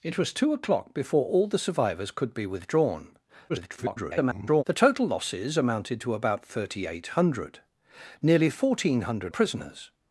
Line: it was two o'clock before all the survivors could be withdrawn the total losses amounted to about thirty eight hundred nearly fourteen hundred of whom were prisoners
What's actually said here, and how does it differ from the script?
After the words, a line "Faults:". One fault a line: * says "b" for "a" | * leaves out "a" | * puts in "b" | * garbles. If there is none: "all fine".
it was two o'clock before all the survivors could be withdrawn [garbled] the total losses amounted to about thirty eight hundred nearly fourteen hundred prisoners
Faults:
* garbles
* leaves out "of whom were"